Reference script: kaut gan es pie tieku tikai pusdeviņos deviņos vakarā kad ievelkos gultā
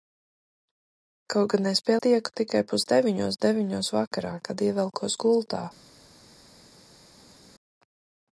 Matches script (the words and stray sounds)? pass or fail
pass